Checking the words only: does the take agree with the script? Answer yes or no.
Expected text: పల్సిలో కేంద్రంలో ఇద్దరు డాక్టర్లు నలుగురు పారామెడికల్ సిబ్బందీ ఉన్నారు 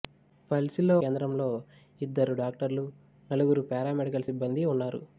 yes